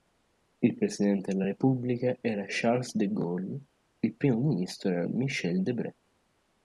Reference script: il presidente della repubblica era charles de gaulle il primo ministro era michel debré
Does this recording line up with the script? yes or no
yes